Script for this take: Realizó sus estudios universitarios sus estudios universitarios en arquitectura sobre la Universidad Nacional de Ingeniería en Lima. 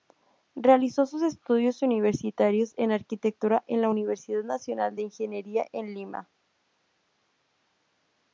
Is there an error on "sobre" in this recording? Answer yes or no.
yes